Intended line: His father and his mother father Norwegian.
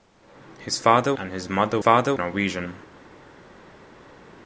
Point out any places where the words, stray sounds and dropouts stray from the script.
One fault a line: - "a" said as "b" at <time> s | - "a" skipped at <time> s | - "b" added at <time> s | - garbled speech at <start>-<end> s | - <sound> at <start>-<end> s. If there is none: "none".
none